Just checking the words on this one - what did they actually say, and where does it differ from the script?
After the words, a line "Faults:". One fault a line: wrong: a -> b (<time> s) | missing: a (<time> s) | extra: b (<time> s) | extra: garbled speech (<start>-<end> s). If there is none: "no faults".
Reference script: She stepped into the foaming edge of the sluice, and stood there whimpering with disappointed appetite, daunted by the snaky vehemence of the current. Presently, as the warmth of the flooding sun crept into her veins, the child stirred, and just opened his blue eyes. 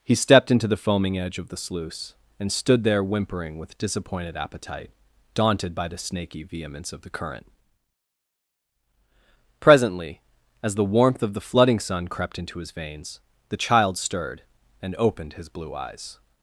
He stepped into the foaming edge of the sluice, and stood there whimpering with disappointed appetite, daunted by the snaky vehemence of the current. Presently, as the warmth of the flooding sun crept into his veins, the child stirred, and opened his blue eyes.
Faults:
wrong: She -> He (0.0 s)
wrong: her -> his (12.6 s)
missing: just (14.9 s)